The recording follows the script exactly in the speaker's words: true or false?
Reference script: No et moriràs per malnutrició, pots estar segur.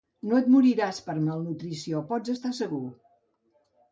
true